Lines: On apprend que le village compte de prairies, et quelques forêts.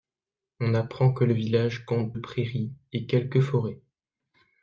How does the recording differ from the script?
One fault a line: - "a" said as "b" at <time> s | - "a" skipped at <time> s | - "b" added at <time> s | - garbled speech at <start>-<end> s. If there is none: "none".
- "de" skipped at 2.1 s